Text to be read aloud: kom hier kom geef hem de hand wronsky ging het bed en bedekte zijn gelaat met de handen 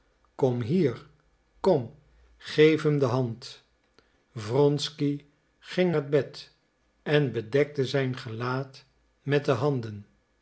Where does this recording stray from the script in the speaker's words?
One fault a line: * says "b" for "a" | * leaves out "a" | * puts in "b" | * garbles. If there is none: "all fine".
all fine